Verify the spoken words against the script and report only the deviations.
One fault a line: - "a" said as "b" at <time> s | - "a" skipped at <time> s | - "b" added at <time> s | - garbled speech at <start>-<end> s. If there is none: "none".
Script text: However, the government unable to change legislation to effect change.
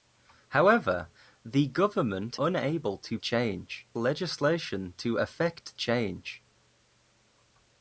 none